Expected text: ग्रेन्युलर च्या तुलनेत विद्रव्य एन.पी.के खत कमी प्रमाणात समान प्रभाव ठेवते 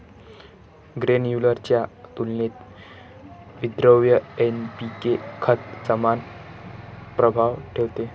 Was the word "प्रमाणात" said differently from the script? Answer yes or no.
yes